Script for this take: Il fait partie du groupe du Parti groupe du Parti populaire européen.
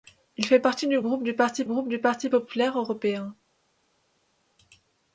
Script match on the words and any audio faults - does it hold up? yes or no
yes